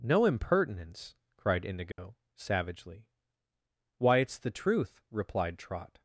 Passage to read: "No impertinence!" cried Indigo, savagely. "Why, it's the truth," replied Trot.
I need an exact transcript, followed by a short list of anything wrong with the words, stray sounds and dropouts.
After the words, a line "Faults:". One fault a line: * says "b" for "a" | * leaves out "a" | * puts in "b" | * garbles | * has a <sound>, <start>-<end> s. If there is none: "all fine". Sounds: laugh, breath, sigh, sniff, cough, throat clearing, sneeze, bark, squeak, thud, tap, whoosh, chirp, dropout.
"No impertinence!" cried Indigo, savagely. "Why, it's the truth," replied Trot.
Faults:
* has a dropout, 1.9-2.0 s